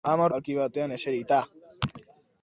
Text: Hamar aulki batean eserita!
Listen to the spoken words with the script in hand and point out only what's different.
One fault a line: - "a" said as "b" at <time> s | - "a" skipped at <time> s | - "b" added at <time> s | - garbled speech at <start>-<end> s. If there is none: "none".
none